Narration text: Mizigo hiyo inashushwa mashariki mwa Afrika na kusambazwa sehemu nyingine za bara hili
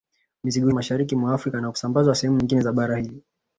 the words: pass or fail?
fail